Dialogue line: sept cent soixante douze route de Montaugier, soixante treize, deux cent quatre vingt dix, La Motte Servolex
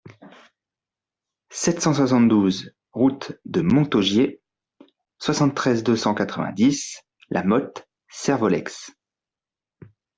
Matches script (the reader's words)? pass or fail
pass